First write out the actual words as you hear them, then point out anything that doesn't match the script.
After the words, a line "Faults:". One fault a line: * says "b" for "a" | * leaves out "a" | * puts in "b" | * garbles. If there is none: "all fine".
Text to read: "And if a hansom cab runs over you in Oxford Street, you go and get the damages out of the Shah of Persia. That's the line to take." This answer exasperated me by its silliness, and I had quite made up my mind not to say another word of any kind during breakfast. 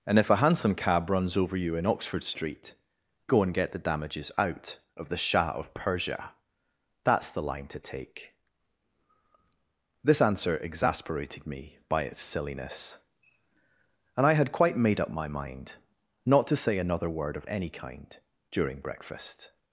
"And if a hansom cab runs over you in Oxford Street, go and get the damages out of the Shah of Persia. That's the line to take." This answer exasperated me by its silliness, and I had quite made up my mind not to say another word of any kind during breakfast.
Faults:
* leaves out "you"